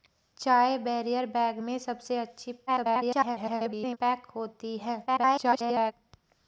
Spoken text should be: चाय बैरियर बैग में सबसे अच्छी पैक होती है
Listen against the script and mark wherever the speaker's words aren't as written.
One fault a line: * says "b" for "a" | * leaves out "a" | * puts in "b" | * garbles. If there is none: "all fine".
* garbles
* garbles